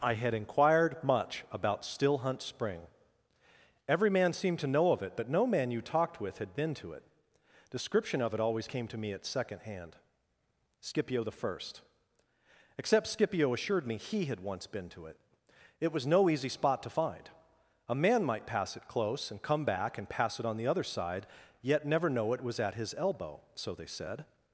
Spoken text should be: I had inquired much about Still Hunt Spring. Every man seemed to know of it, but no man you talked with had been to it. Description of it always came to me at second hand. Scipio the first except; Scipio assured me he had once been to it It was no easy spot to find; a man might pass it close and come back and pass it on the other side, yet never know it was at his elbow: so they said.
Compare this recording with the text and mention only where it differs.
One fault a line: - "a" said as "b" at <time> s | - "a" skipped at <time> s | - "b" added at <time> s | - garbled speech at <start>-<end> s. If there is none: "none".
none